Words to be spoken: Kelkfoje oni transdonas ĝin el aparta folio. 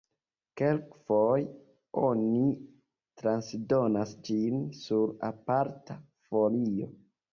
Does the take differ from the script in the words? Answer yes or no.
yes